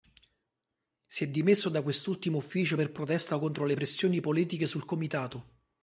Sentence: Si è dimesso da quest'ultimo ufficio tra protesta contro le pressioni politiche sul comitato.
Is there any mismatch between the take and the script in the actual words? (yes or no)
yes